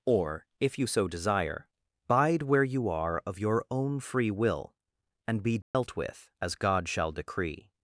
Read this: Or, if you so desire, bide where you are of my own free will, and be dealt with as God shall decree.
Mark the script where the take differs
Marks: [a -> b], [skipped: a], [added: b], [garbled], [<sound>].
Or, if you so desire, bide where you are of [my -> your] own free will, and be dealt [dropout] with as God shall decree.